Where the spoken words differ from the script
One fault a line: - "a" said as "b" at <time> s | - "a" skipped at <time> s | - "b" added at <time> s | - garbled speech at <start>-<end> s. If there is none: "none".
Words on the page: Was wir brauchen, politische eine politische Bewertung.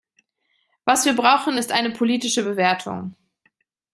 - "politische" said as "ist" at 1.6 s